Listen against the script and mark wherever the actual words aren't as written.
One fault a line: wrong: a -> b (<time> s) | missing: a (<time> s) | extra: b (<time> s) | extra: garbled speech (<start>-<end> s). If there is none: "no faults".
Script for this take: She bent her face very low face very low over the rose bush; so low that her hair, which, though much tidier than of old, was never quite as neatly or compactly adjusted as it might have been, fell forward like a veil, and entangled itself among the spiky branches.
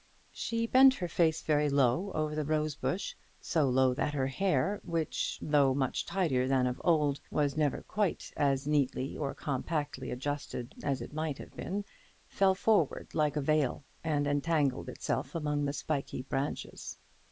missing: face very low (2.1 s)